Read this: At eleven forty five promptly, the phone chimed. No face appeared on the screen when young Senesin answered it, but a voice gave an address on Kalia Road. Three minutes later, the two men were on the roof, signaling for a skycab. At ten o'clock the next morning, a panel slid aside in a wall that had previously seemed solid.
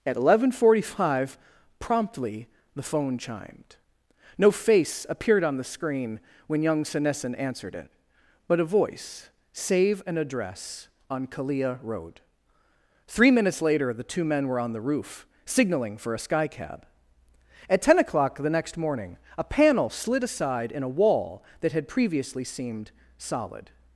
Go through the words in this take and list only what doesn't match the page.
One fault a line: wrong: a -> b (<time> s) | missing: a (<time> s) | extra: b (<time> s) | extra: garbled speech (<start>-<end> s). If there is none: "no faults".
wrong: gave -> save (9.5 s)